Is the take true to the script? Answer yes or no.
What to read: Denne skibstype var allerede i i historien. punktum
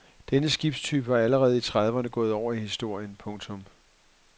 no